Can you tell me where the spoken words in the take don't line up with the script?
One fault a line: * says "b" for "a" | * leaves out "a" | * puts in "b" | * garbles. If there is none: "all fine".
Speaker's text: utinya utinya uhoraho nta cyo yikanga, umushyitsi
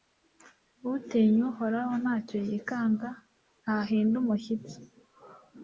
* leaves out "utinya"
* puts in "ntahinda"